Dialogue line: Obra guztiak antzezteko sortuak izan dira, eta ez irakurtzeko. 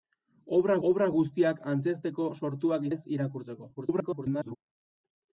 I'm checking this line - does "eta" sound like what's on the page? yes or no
no